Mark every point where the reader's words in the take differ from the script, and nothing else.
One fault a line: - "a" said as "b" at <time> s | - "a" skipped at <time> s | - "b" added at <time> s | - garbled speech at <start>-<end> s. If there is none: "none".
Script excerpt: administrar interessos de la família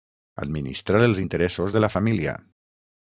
- "els" added at 1.1 s